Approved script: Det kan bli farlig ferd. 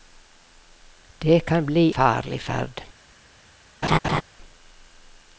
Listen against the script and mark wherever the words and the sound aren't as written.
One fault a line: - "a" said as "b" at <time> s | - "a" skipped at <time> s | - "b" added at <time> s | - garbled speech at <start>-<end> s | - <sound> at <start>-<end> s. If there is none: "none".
- laugh at 3.8-4.2 s